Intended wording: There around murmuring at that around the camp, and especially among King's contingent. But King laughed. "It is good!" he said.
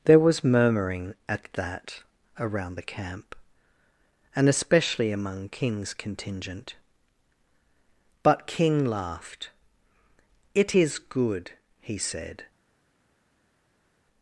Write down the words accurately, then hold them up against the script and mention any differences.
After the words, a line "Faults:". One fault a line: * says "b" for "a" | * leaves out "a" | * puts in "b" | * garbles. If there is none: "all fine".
There was murmuring at that around the camp, and especially among King's contingent. But King laughed. "It is good!" he said.
Faults:
* says "was" for "around"